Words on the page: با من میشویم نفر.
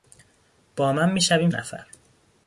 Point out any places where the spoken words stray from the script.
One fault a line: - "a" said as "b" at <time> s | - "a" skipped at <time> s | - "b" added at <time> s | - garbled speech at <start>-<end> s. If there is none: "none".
none